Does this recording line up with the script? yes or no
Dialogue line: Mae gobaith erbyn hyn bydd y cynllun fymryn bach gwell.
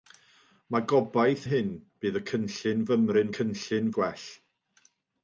no